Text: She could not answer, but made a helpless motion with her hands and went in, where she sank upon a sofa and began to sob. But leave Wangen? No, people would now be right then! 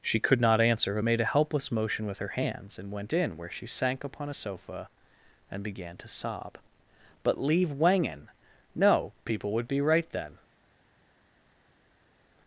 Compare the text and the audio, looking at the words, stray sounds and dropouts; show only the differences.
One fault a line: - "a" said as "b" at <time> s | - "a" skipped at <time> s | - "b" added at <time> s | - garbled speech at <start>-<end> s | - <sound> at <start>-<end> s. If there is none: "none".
- "now" skipped at 9.7 s